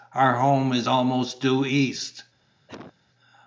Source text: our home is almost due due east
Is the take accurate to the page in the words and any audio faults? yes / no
no